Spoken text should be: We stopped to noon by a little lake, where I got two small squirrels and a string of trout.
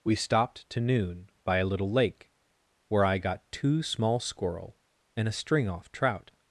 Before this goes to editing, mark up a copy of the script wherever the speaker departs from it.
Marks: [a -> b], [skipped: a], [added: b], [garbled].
We stopped to noon by a little lake, where I got two small [squirrels -> squirrel] and a string [of -> off] trout.